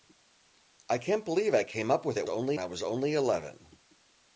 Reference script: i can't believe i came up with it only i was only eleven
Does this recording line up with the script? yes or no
yes